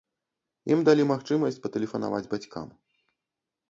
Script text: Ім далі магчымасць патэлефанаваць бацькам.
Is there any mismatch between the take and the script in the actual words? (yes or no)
no